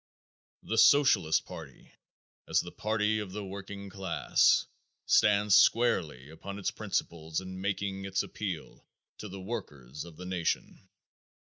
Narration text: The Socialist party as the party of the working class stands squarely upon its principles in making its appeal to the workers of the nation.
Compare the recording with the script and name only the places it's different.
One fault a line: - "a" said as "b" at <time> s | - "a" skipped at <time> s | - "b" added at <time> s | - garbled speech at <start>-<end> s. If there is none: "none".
none